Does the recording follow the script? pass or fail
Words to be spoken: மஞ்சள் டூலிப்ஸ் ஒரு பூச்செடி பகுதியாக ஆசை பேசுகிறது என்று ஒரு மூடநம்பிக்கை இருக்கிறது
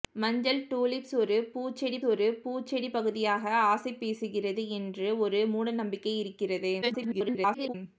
fail